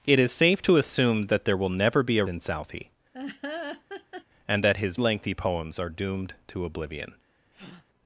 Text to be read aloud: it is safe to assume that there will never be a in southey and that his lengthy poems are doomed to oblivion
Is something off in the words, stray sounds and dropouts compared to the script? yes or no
yes